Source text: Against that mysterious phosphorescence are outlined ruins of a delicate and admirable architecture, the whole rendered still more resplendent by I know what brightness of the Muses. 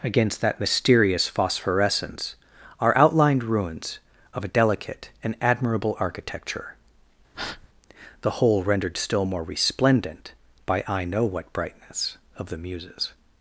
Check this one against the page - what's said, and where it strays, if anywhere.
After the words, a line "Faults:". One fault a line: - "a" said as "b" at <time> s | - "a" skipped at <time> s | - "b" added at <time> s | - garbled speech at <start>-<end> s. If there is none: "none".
Against that mysterious phosphorescence are outlined ruins of a delicate and admirable architecture, the whole rendered still more resplendent by I know what brightness of the Muses.
Faults:
none